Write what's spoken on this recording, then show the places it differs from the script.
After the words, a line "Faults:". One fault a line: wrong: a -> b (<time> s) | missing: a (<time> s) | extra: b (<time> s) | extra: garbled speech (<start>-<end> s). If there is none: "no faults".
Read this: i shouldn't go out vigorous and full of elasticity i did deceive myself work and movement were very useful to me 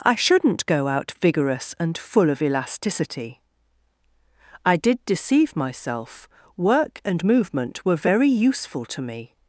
i shouldn't go out vigorous and full of elasticity i did deceive myself work and movement were very useful to me
Faults:
no faults